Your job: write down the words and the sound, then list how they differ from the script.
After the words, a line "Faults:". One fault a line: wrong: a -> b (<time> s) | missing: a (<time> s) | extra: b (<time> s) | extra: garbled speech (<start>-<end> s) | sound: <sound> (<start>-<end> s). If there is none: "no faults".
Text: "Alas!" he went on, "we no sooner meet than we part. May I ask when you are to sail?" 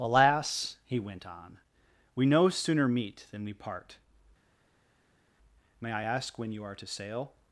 "Alas!" he went on, "we no sooner meet than we part. May I ask when you are to sail?"
Faults:
no faults